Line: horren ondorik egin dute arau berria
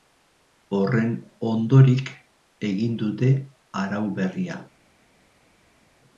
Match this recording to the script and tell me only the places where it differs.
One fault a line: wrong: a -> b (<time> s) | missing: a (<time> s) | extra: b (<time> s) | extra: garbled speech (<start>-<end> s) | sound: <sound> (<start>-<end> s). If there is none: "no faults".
no faults